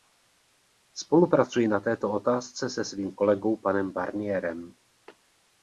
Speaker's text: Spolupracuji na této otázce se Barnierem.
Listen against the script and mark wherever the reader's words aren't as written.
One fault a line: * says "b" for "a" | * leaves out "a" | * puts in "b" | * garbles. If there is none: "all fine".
* puts in "svým kolegou panem"